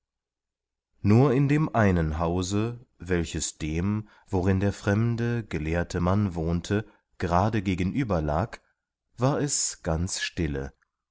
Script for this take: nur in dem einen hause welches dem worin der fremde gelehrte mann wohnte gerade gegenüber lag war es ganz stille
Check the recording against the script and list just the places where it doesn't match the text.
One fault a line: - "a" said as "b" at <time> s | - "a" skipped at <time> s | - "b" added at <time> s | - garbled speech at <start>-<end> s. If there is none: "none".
none